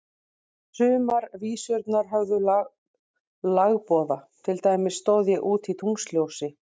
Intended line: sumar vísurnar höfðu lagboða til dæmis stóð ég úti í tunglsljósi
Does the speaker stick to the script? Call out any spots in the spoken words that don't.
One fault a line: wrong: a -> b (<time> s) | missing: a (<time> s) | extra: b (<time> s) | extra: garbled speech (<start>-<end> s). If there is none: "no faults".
no faults